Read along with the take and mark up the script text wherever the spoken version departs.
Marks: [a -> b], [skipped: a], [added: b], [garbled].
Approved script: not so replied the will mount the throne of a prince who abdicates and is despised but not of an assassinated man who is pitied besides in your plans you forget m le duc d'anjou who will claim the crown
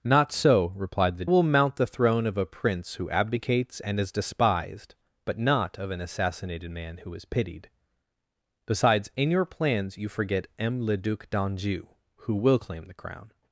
not so replied the will mount the throne of a prince who abdicates and is despised but not of an assassinated man who is pitied besides in your plans you forget m le duc d'anjou who will claim the crown